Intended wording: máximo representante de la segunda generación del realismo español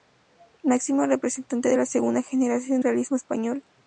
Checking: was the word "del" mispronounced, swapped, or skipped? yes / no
yes